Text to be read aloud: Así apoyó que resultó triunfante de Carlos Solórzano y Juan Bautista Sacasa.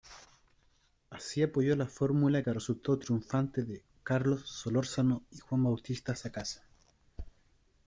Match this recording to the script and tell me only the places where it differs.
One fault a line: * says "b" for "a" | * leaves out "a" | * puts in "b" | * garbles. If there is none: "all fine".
* puts in "la fórmula"